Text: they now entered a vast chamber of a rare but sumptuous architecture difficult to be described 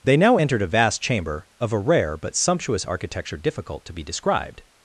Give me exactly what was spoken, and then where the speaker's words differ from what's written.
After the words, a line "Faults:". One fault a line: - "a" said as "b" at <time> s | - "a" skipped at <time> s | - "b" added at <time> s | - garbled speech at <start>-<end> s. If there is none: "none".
they now entered a vast chamber of a rare but sumptuous architecture difficult to be described
Faults:
none